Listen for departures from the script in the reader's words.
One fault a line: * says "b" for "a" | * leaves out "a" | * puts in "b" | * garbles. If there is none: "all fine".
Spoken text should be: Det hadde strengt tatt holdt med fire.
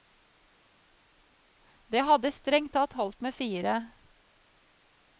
all fine